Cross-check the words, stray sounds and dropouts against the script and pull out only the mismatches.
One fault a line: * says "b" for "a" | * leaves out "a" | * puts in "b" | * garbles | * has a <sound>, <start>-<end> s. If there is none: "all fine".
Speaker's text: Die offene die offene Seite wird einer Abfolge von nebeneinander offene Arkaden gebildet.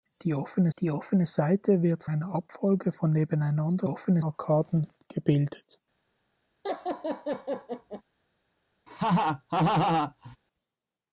* has a laugh, 6.6-8.0 s
* has a laugh, 8.9-10.4 s